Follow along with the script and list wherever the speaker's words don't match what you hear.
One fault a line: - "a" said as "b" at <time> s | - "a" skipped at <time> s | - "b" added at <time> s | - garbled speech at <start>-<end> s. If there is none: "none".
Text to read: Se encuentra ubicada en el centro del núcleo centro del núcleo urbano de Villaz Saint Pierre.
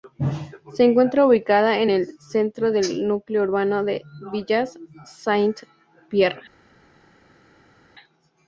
- "centro del núcleo" skipped at 3.4 s